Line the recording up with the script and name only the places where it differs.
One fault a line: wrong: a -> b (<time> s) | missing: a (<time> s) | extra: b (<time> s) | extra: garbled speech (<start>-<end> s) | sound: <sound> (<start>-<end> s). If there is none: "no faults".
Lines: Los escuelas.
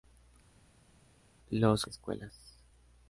no faults